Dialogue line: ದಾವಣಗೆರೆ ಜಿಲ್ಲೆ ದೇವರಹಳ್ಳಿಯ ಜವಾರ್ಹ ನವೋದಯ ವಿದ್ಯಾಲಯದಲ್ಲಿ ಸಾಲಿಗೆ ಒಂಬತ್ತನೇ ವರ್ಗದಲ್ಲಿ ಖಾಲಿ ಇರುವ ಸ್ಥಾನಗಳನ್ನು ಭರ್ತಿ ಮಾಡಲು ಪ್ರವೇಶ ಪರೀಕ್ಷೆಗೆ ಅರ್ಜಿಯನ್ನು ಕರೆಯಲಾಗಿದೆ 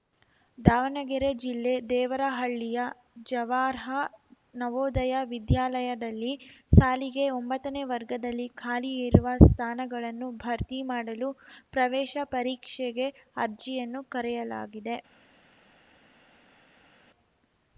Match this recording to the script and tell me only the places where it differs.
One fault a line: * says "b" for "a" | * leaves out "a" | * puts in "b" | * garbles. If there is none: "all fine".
all fine